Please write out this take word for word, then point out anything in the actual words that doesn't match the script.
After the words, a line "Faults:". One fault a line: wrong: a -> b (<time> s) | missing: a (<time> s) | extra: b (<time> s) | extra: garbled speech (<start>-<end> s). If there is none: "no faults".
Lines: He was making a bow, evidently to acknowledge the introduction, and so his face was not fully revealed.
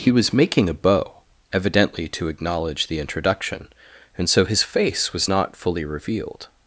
He was making a bow, evidently to acknowledge the introduction, and so his face was not fully revealed.
Faults:
no faults